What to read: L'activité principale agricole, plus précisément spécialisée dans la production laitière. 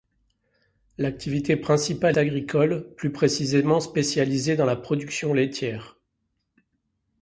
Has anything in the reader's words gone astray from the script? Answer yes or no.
no